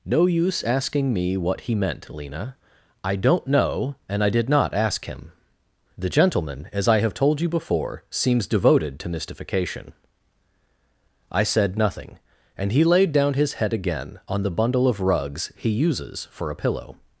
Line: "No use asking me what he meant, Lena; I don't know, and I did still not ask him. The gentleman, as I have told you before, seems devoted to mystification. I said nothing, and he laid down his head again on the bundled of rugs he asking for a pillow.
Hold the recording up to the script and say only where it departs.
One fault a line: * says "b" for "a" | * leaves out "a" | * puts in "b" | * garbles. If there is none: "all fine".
* leaves out "still"
* says "bundle" for "bundled"
* says "uses" for "asking"